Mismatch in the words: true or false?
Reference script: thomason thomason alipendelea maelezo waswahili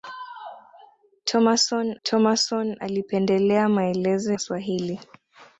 false